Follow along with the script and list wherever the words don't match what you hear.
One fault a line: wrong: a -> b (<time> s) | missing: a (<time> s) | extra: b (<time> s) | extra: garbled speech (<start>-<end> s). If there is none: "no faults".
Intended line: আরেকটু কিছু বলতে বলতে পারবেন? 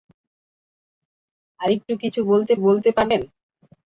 no faults